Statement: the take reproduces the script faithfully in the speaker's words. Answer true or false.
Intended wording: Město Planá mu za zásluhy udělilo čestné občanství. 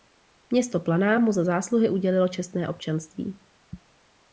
true